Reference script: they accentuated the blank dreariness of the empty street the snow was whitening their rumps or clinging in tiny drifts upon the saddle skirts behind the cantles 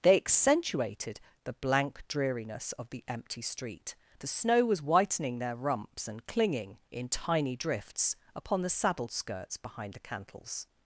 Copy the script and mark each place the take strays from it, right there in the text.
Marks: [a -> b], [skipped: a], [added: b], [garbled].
they accentuated the blank dreariness of the empty street the snow was whitening their rumps [or -> and] clinging in tiny drifts upon the saddle skirts behind the cantles